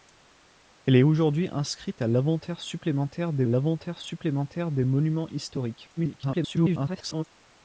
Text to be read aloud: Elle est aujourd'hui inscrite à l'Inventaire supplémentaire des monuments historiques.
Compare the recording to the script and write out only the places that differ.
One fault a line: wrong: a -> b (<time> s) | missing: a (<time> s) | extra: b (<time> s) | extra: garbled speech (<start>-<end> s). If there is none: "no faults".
extra: l'Inventaire supplémentaire des (3.5 s)
extra: garbled speech (6.0-7.2 s)